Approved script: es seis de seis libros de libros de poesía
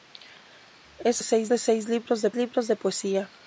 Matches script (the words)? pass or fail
pass